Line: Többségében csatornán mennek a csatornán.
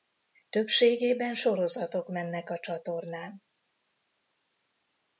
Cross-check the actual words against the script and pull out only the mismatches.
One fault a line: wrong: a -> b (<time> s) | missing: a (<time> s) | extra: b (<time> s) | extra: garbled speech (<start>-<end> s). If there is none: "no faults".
wrong: csatornán -> sorozatok (1.3 s)